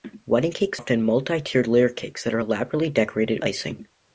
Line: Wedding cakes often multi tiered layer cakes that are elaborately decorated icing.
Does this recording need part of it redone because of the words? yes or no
no